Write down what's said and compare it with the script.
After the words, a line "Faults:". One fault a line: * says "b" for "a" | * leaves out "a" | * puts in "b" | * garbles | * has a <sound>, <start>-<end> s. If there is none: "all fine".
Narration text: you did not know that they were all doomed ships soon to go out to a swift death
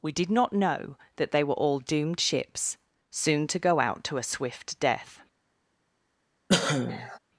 we did not know that they were all doomed ships soon to go out to a swift death
Faults:
* says "we" for "you"
* has a cough, 6.5-7.2 s